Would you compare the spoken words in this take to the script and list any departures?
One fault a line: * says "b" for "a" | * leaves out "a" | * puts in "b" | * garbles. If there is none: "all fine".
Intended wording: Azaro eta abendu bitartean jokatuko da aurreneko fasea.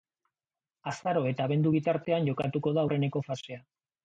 all fine